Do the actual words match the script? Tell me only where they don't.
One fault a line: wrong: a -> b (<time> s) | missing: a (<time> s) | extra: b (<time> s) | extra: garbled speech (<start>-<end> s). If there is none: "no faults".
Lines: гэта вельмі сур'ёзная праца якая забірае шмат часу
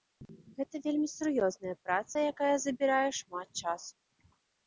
no faults